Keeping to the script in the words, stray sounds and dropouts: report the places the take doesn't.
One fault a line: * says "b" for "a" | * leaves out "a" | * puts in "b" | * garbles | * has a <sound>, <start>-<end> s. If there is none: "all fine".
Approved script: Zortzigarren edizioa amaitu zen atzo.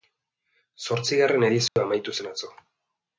* has a dropout, 1.7-1.8 s